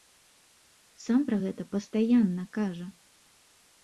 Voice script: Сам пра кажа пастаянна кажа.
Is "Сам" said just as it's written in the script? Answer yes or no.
yes